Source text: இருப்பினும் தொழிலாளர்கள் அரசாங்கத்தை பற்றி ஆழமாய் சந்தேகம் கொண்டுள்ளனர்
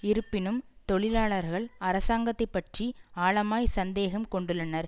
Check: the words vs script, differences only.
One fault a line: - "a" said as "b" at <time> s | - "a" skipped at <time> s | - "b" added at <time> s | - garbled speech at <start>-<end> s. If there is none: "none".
none